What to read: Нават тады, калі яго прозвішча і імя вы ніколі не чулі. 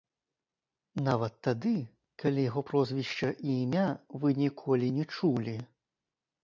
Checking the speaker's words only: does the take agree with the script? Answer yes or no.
yes